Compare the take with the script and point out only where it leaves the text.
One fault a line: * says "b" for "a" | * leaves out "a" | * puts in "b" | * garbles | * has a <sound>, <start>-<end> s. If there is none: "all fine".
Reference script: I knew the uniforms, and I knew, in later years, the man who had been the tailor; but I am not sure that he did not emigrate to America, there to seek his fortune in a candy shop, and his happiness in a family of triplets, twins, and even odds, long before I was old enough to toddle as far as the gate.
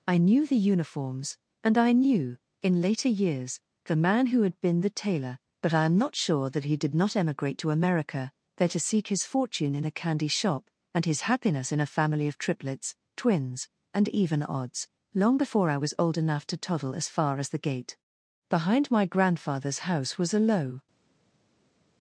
* puts in "Behind my grandfather's house was a low"